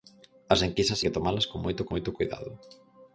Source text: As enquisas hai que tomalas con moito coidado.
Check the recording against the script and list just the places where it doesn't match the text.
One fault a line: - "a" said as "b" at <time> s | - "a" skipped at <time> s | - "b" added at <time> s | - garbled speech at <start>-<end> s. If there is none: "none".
- "hai" skipped at 1.0 s
- "moito" added at 1.9 s